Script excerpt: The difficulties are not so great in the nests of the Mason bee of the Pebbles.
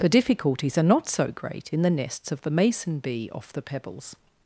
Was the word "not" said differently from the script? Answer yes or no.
no